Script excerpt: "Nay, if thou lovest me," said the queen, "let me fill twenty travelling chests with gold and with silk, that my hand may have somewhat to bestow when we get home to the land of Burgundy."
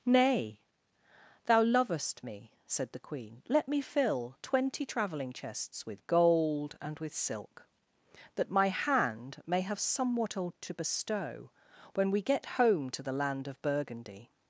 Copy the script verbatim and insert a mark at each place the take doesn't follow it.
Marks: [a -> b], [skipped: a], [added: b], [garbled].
"Nay, [skipped: if] thou lovest me," said the queen, "let me fill twenty travelling chests with gold and with silk, that my hand may have somewhat to bestow when we get home to the land of Burgundy."